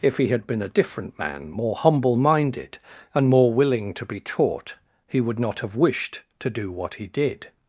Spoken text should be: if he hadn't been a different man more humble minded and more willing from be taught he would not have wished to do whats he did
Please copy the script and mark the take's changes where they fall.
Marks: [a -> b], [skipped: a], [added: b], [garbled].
if he [hadn't -> had] been a different man more humble minded and more willing [from -> to] be taught he would not have wished to do [whats -> what] he did